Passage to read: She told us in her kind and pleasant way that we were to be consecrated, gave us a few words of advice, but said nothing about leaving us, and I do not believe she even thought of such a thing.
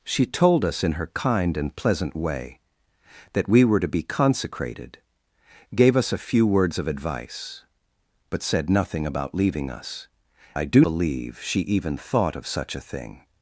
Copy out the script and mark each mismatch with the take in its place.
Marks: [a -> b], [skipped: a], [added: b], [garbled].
She told us in her kind and pleasant way that we were to be consecrated, gave us a few words of advice, but said nothing about leaving us, [skipped: and] I do [skipped: not] believe she even thought of such a thing.